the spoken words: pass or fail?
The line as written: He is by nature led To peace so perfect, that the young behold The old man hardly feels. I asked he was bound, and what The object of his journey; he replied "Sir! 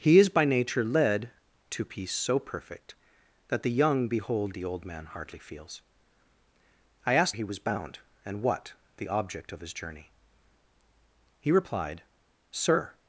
pass